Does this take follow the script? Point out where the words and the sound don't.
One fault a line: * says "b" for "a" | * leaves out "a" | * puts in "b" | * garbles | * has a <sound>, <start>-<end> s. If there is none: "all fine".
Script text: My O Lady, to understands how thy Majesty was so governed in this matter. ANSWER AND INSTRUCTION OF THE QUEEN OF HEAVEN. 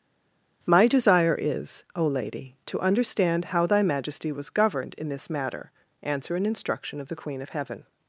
* puts in "desire is"
* says "understand" for "understands"
* leaves out "so"